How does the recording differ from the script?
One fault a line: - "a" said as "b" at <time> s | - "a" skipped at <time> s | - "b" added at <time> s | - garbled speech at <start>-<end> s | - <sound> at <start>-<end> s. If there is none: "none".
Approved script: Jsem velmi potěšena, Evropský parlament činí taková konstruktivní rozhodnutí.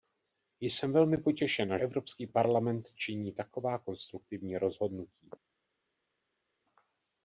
none